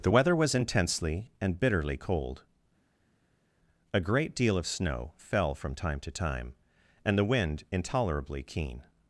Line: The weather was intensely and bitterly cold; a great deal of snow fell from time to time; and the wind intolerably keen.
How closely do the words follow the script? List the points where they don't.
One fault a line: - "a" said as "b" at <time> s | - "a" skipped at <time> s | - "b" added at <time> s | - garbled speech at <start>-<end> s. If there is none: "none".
none